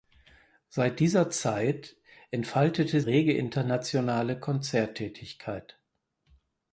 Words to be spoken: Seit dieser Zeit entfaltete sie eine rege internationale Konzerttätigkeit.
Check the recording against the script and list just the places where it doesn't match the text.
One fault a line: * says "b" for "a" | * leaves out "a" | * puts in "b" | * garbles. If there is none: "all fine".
* leaves out "sie eine"